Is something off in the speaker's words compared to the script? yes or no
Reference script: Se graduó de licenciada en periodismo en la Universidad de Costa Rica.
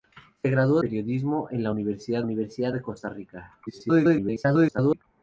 yes